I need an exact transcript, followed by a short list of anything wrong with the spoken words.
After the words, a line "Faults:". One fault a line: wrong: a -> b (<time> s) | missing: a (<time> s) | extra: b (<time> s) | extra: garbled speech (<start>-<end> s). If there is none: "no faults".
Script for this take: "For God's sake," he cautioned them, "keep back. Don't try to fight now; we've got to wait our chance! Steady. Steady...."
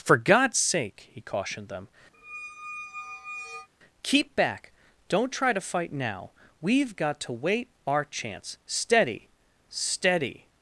"For God's sake," he cautioned them, "keep back. Don't try to fight now; we've got to wait our chance! Steady. Steady...."
Faults:
no faults